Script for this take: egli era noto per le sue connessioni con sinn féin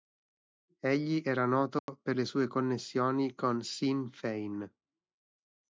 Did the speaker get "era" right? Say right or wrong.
right